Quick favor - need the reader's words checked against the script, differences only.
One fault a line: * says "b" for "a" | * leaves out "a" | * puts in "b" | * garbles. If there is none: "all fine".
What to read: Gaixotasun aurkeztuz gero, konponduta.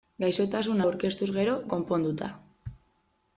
all fine